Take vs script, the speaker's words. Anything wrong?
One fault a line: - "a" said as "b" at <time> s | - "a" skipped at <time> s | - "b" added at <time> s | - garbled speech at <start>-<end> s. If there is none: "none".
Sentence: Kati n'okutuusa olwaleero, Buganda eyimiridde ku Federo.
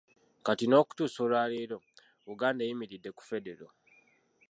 none